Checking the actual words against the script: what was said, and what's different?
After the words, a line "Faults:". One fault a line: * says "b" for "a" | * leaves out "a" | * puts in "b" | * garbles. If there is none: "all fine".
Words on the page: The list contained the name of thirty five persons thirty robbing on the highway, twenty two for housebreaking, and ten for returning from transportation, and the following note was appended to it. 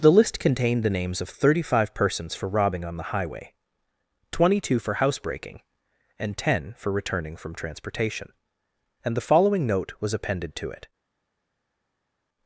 The list contained the names of thirty five persons for robbing on the highway, twenty two for housebreaking, and ten for returning from transportation, and the following note was appended to it.
Faults:
* says "names" for "name"
* says "for" for "thirty"